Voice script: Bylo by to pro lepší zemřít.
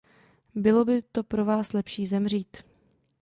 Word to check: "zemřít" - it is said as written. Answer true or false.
true